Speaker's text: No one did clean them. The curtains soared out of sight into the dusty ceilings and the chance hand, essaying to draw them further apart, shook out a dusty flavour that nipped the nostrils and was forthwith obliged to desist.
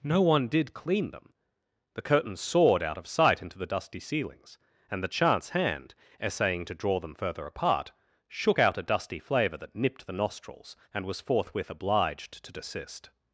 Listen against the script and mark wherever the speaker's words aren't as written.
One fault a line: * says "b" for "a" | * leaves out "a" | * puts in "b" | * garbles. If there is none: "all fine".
all fine